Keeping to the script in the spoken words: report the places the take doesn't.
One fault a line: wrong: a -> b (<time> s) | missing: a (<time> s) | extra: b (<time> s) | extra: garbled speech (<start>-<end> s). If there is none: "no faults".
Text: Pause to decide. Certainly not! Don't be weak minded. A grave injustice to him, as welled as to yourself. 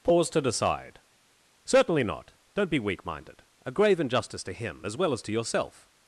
wrong: welled -> well (4.9 s)